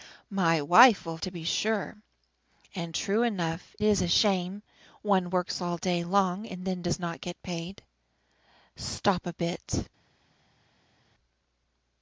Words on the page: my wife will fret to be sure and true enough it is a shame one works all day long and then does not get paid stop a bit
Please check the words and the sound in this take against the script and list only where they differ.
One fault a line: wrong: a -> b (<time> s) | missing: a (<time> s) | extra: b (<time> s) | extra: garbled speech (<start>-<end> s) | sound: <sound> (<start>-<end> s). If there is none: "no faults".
missing: fret (1.2 s)
missing: it (3.7 s)